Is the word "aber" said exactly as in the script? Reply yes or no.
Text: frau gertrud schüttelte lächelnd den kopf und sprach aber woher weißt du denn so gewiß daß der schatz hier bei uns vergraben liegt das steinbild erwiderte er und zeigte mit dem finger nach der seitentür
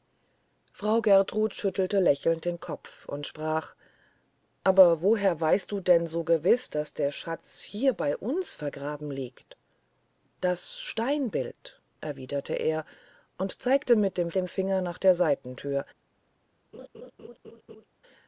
yes